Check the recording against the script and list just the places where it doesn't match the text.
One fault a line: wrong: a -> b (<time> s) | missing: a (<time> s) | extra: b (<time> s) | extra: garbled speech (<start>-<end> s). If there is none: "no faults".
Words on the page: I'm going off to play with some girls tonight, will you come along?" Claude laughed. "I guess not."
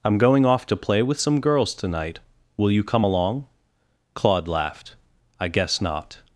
no faults